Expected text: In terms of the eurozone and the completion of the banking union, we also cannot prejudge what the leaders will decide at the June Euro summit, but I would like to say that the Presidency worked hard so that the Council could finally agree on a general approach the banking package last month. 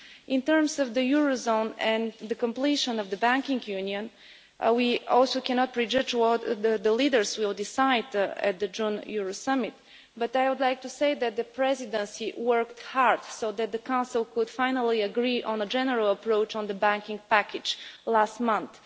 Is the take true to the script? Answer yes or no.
no